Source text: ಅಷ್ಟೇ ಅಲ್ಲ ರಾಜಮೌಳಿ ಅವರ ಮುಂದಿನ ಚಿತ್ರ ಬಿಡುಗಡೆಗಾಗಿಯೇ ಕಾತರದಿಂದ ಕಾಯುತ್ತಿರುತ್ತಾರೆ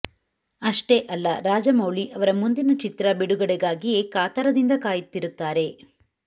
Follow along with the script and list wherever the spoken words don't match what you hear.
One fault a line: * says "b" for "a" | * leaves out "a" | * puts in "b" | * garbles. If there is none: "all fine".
all fine